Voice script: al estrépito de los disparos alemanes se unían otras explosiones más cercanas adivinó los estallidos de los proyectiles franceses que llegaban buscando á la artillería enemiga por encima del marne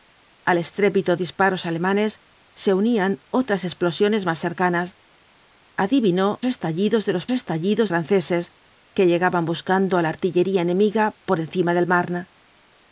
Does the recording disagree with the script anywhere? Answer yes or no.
yes